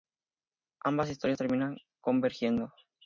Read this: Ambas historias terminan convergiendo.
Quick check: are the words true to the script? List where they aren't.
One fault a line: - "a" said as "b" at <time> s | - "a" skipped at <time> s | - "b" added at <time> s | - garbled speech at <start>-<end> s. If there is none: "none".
none